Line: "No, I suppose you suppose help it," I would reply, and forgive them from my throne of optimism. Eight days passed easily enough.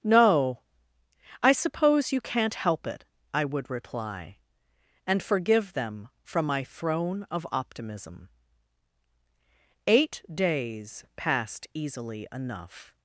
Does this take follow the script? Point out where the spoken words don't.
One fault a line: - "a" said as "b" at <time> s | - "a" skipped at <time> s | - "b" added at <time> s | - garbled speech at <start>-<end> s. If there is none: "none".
- "suppose" said as "can't" at 2.2 s